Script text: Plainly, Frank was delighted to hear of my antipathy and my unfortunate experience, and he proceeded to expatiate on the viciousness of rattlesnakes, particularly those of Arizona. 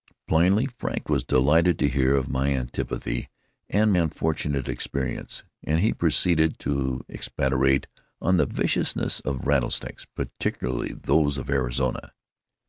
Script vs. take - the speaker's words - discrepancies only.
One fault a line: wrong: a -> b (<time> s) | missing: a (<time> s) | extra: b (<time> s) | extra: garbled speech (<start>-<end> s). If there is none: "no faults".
missing: my (3.9 s)